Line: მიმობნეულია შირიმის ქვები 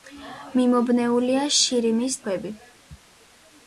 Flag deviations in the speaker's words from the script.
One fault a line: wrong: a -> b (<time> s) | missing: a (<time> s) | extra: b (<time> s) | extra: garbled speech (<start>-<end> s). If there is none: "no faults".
no faults